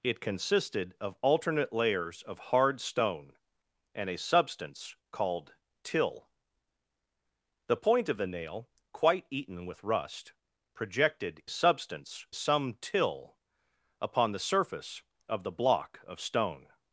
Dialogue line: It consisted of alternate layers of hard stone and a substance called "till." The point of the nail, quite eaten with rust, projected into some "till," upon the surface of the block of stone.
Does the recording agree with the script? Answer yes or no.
no